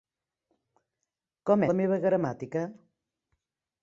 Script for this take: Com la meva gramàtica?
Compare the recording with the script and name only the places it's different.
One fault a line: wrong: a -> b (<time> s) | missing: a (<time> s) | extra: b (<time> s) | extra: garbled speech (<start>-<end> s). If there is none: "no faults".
no faults